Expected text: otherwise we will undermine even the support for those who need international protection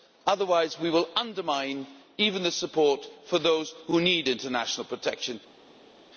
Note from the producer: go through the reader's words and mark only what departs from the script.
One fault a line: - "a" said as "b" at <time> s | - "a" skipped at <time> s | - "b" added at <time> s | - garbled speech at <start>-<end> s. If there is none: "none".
none